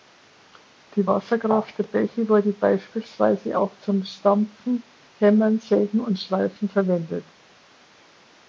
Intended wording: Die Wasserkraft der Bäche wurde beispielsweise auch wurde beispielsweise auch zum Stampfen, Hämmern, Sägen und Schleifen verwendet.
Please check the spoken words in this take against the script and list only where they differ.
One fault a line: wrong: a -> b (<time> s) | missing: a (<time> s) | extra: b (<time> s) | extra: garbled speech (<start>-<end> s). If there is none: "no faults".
missing: wurde beispielsweise auch (3.8 s)